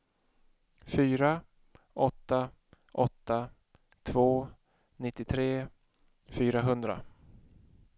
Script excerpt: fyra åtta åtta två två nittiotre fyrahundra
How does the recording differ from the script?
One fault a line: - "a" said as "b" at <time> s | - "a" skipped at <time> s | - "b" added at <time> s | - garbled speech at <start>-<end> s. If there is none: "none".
- "två" skipped at 4.5 s